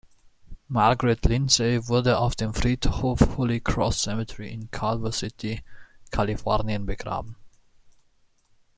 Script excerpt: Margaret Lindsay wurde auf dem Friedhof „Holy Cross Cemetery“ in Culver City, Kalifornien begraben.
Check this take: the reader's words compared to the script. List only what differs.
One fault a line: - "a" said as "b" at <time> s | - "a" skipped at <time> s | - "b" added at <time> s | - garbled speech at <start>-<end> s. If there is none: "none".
none